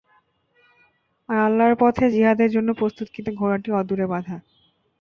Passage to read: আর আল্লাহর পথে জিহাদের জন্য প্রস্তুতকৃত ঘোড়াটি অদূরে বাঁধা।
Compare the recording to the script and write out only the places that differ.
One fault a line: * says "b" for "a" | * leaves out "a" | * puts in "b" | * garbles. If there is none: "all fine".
all fine